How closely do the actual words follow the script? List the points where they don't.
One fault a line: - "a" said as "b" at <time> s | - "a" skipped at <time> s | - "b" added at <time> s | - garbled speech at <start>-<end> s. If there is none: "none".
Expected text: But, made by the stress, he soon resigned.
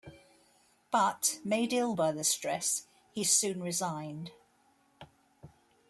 - "ill" added at 1.7 s